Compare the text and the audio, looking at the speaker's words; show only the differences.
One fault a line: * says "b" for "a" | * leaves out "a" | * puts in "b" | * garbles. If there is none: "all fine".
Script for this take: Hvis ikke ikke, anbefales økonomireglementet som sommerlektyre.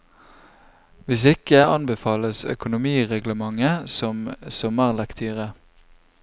* leaves out "ikke"